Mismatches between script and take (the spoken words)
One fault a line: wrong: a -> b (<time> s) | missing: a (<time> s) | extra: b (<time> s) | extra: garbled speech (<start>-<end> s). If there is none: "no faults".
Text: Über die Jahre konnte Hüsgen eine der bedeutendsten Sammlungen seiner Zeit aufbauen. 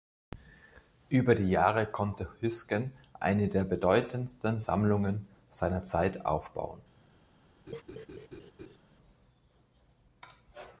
no faults